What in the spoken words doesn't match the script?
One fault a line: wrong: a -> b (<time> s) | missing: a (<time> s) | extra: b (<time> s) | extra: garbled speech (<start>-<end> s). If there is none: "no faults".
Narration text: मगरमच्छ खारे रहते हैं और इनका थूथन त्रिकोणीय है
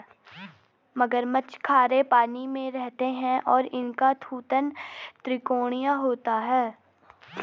extra: पानी में (2.0 s)
extra: होता (5.9 s)